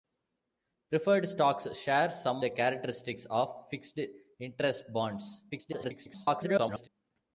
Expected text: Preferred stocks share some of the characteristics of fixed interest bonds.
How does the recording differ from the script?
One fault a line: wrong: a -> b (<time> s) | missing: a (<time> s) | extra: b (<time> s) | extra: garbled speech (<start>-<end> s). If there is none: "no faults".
missing: of (2.4 s)
extra: garbled speech (5.5-6.9 s)